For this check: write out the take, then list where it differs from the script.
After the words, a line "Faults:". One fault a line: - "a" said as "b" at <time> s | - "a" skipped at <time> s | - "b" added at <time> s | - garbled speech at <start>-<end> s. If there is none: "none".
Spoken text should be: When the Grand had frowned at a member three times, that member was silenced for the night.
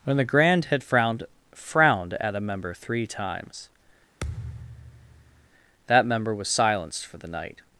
When the Grand had frowned frowned at a member three times, that member was silenced for the night.
Faults:
- "frowned" added at 1.5 s